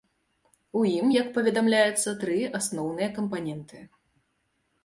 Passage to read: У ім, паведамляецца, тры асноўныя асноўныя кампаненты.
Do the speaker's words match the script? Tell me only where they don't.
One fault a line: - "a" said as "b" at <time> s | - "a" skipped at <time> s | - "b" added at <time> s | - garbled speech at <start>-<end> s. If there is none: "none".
- "як" added at 1.2 s
- "асноўныя" skipped at 3.1 s